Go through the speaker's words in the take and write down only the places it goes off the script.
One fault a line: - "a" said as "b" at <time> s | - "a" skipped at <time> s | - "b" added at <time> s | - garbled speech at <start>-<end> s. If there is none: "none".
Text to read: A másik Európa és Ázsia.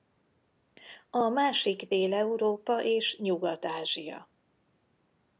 - "Dél" added at 1.9 s
- "Nyugat" added at 3.2 s